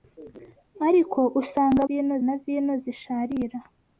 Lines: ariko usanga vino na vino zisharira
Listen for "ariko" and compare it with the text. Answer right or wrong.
right